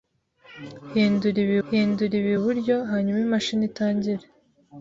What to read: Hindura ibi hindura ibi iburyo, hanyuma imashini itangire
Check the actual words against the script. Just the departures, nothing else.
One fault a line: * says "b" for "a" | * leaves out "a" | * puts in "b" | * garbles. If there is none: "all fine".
all fine